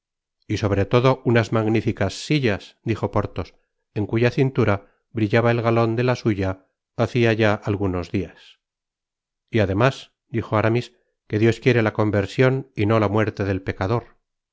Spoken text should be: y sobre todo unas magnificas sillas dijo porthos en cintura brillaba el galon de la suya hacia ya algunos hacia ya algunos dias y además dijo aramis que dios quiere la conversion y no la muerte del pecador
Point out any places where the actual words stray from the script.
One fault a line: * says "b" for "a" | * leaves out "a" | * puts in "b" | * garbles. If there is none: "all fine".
* puts in "cuya"
* leaves out "hacia ya algunos"